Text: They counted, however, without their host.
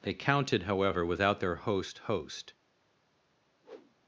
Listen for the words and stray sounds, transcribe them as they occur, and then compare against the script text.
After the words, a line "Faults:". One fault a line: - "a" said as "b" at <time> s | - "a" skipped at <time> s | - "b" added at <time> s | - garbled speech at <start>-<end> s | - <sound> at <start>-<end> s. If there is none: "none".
They counted, however, without their host host.
Faults:
- "host" added at 2.0 s
- whoosh at 3.6-4.0 s